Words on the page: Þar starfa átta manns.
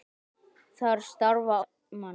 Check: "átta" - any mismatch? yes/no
yes